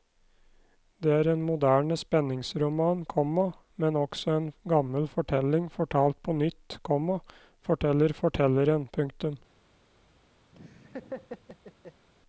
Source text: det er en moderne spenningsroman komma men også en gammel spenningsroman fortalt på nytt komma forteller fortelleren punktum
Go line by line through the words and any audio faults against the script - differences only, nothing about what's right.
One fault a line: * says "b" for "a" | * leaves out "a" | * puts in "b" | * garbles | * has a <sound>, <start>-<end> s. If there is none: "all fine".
* says "fortelling" for "spenningsroman"
* has a laugh, 10.5-12.1 s